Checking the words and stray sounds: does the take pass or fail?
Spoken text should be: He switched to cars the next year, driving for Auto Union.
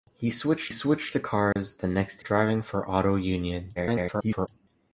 fail